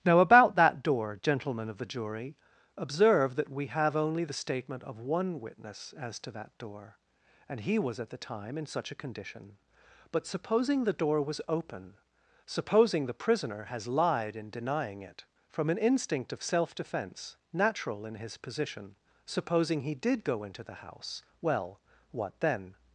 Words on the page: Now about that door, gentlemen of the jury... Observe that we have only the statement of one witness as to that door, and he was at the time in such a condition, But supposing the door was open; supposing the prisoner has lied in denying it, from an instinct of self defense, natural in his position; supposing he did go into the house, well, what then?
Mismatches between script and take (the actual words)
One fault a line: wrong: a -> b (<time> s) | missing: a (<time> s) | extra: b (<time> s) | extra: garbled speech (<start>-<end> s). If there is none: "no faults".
no faults